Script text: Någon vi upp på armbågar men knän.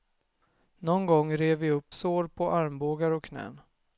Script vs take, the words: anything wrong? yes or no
yes